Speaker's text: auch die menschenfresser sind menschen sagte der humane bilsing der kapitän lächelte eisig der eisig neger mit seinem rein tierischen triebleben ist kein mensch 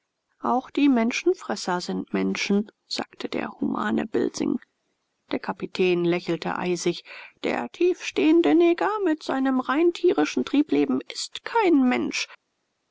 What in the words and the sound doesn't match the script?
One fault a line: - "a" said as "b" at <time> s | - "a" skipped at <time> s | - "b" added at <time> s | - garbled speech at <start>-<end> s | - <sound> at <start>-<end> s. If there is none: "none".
- "eisig" said as "tiefstehende" at 7.7 s